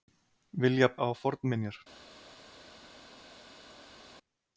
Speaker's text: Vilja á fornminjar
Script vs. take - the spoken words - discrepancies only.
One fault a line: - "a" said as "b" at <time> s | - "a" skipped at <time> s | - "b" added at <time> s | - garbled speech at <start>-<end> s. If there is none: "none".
none